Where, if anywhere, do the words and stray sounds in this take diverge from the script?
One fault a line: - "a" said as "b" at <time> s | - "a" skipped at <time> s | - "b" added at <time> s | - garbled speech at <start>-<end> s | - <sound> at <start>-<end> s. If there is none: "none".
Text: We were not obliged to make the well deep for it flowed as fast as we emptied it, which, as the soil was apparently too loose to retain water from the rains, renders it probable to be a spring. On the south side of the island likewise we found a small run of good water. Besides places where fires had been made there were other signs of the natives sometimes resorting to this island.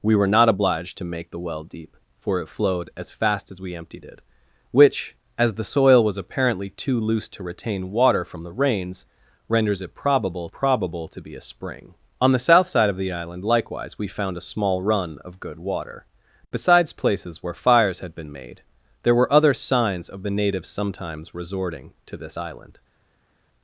- "probable" added at 10.5 s